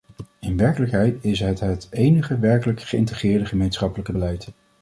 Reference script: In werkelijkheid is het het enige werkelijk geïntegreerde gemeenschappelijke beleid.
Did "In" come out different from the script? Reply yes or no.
no